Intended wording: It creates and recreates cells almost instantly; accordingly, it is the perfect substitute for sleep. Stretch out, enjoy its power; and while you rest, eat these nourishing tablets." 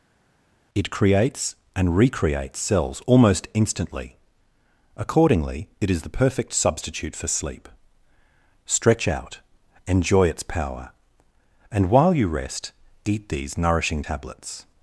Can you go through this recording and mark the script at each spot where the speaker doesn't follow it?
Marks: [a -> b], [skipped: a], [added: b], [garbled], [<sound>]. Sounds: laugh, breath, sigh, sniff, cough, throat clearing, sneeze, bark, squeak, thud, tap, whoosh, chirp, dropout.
It creates and recreates cells almost instantly; accordingly, it is the perfect substitute for sleep. Stretch out, enjoy its power; and while you rest, eat these nourishing tablets."